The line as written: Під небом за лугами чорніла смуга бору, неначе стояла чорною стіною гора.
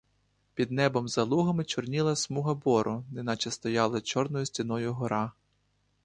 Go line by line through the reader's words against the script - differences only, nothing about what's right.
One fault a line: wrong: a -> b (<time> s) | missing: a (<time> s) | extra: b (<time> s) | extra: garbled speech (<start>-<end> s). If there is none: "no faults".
no faults